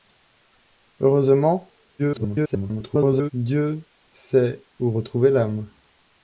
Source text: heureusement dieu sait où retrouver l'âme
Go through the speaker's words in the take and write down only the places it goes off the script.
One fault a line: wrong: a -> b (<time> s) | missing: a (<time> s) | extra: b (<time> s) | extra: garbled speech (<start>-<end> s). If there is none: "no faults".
extra: garbled speech (2.0-3.3 s)